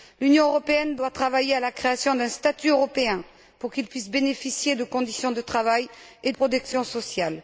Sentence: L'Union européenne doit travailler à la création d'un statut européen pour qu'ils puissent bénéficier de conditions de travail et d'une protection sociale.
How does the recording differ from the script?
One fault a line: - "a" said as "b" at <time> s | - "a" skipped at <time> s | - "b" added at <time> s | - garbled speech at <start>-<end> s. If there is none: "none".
- "d'une" skipped at 6.3 s